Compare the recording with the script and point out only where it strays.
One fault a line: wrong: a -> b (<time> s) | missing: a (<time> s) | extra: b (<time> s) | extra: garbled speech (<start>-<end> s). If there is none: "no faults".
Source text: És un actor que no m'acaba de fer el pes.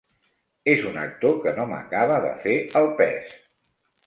no faults